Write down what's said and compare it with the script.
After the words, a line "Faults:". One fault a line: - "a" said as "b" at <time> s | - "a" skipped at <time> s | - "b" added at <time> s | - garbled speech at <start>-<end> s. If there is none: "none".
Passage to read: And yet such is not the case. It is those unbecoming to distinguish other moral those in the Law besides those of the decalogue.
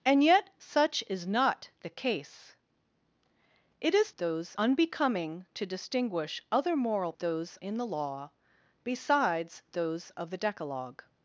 And yet such is not the case. It is those unbecoming to distinguish other moral those in the Law besides those of the decalogue.
Faults:
none